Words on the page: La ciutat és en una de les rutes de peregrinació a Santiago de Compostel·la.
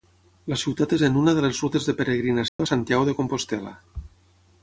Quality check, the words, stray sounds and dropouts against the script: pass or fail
fail